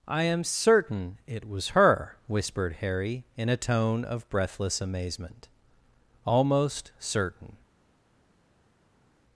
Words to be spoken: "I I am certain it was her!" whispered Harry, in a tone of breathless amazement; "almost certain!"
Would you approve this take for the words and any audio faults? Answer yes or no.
no